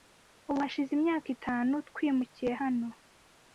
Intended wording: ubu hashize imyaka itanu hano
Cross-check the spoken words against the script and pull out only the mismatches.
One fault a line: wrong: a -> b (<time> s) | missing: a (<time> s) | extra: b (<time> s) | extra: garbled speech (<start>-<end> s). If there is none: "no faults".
extra: twimukiye (1.9 s)